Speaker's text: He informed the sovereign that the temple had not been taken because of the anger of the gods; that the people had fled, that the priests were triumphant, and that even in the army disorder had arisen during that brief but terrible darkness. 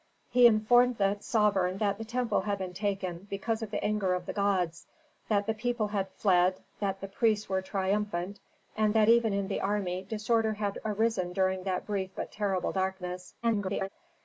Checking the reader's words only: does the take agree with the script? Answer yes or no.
no